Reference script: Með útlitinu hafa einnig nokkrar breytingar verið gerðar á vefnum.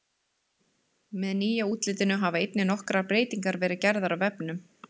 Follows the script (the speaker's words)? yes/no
no